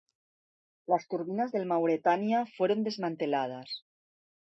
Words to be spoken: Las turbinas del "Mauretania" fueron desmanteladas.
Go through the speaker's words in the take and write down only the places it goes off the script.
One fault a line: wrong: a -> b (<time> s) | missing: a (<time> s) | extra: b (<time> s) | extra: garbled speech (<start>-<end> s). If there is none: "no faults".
no faults